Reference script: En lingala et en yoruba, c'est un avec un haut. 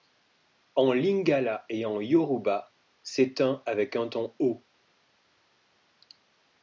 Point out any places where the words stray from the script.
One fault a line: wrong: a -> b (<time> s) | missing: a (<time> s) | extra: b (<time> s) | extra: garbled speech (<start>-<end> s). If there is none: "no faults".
extra: ton (4.1 s)